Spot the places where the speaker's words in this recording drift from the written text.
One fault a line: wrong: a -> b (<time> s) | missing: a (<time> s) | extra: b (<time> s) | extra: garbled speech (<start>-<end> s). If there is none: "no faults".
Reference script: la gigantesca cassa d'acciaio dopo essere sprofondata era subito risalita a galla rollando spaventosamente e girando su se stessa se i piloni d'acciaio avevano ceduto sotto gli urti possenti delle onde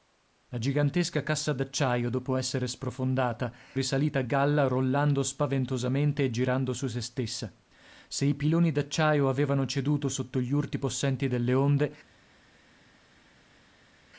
missing: era subito (3.5 s)